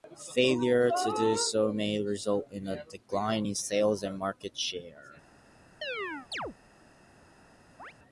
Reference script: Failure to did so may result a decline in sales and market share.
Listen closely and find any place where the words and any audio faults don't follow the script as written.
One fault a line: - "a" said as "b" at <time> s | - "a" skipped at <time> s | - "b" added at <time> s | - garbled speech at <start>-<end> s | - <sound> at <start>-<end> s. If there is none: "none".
- "did" said as "do" at 1.1 s
- "in" added at 2.5 s
- chirp at 5.8-6.6 s
- chirp at 7.8-7.9 s